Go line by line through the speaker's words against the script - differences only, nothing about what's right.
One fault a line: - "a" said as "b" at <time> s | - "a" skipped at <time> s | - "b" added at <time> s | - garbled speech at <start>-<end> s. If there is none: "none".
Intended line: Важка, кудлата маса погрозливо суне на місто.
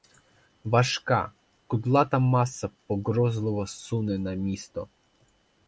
none